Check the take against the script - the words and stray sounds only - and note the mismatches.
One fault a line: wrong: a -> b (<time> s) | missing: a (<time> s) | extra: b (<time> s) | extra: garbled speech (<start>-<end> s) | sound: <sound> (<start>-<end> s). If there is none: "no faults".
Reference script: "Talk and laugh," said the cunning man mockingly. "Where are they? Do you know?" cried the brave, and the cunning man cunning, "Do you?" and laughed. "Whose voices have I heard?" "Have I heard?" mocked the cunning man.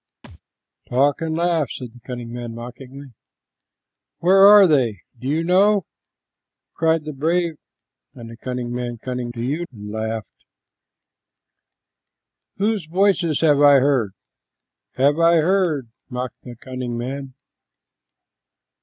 sound: thud (0.2-0.4 s)